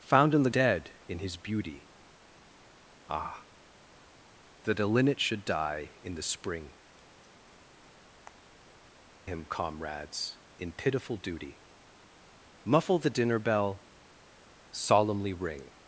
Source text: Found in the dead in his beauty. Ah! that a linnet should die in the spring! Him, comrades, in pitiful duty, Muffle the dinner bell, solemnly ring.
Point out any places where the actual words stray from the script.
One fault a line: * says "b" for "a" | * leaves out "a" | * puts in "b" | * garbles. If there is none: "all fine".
all fine